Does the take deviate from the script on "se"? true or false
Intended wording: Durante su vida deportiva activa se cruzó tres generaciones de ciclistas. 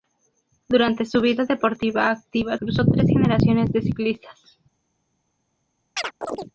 true